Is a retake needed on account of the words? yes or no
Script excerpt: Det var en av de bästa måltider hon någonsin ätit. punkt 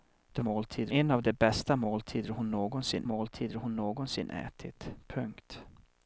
yes